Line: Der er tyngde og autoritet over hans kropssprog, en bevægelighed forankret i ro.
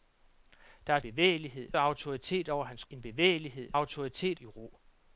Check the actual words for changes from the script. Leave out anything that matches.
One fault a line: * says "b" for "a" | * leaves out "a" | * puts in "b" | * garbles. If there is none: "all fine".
* says "bevægelighed" for "tyngde"
* leaves out "kropssprog"
* says "autoritet" for "forankret"